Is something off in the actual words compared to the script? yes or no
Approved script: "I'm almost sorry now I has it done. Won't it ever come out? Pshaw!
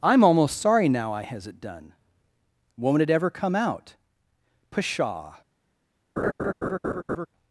no